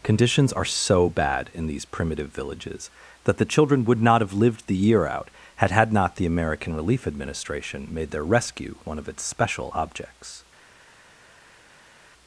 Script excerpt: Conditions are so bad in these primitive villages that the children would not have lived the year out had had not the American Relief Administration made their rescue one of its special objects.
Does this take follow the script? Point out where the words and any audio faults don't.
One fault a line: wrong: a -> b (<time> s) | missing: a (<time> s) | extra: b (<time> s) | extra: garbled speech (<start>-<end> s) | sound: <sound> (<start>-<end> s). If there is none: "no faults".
no faults